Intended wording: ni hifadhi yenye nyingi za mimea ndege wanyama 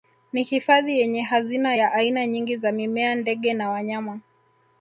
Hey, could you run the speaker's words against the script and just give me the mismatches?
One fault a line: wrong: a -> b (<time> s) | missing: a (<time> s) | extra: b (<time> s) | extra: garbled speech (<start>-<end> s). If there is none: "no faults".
extra: hazina ya aina (1.2 s)
extra: na (3.5 s)